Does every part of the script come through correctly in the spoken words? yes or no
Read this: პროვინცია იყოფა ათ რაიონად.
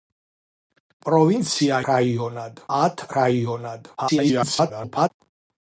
no